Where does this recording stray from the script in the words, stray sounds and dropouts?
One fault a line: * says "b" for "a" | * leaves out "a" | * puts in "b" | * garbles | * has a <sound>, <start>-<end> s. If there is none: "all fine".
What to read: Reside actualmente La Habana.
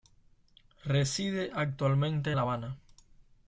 all fine